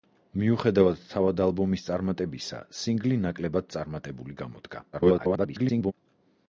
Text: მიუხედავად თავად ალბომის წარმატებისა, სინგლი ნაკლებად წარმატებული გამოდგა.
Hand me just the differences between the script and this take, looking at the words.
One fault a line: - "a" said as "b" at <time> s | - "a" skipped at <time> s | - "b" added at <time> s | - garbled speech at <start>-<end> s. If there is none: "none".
- garbled speech at 4.9-5.9 s